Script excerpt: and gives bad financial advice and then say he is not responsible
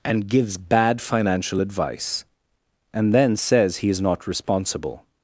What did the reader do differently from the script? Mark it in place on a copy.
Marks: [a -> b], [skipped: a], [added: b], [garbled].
and gives bad financial advice and then [say -> says] he is not responsible